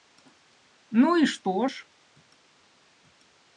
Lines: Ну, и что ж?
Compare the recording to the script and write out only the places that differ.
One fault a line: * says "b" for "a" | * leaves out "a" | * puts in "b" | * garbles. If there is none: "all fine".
all fine